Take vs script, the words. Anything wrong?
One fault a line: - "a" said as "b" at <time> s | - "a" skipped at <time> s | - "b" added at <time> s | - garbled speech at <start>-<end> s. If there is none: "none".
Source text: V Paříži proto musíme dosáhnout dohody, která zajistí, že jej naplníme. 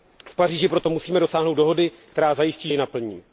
- "že" skipped at 2.7 s